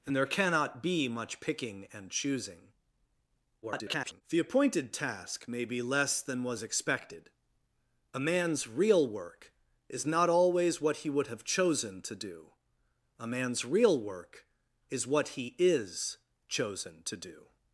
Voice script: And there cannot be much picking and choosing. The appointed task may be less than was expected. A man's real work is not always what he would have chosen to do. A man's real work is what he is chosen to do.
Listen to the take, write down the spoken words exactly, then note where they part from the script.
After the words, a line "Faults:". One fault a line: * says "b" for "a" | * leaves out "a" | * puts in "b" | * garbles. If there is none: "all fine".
And there cannot be much picking and choosing. [garbled] The appointed task may be less than was expected. A man's real work is not always what he would have chosen to do. A man's real work is what he is chosen to do.
Faults:
* garbles